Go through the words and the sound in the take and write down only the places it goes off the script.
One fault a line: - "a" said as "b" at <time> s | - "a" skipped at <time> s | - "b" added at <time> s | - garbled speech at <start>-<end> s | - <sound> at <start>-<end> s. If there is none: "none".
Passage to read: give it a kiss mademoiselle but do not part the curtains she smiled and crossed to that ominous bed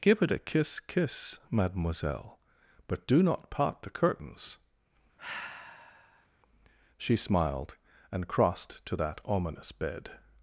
- "kiss" added at 0.8 s
- sigh at 5.2-6.3 s